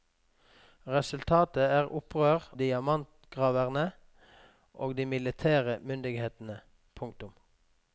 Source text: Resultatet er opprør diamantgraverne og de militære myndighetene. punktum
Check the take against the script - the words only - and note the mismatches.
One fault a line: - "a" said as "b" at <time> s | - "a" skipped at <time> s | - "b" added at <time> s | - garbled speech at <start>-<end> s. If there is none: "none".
none